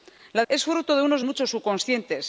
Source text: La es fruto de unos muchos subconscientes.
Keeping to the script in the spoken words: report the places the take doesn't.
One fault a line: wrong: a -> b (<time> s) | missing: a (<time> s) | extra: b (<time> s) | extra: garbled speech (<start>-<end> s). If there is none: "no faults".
no faults